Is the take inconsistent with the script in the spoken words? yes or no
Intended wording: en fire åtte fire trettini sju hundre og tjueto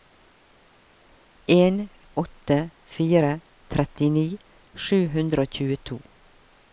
yes